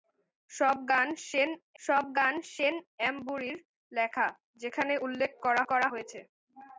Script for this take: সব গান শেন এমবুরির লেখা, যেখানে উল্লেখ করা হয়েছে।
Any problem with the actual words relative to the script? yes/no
yes